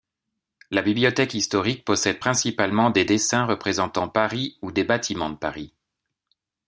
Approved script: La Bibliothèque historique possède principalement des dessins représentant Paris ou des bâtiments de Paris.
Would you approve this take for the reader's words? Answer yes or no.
yes